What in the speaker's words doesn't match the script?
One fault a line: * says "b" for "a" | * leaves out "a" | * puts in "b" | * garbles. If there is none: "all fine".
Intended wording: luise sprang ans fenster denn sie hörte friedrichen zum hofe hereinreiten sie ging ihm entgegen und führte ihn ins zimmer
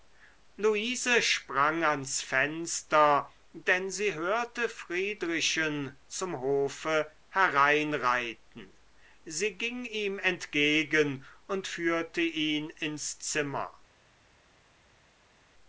all fine